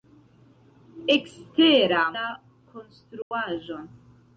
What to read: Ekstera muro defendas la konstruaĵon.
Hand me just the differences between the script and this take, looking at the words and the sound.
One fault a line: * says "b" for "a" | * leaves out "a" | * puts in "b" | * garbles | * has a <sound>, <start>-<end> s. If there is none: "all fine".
* leaves out "muro defendas"
* has a dropout, 3.2-3.3 s